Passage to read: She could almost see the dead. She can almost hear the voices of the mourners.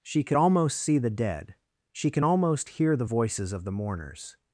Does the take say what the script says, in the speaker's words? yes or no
yes